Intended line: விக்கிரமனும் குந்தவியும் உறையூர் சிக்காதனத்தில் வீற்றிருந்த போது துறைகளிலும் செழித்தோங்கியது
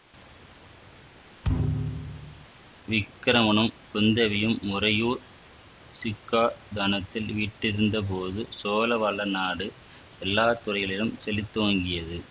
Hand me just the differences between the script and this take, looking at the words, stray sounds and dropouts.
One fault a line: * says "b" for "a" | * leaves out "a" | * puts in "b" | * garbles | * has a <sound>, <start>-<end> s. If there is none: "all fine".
* has a thud, 1.4-2.5 s
* puts in "சோழ வளநாடு எல்லா"